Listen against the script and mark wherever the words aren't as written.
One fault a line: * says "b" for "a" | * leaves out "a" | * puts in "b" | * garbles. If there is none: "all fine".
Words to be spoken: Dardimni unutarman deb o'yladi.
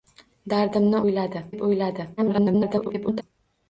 * says "o'yladi" for "unutarman"
* garbles